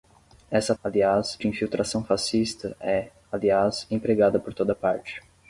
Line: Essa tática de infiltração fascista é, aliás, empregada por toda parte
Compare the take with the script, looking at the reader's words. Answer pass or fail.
fail